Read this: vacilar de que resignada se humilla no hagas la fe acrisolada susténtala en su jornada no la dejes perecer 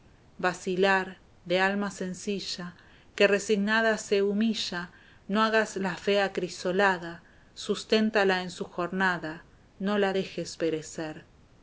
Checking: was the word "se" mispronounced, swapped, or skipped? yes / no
no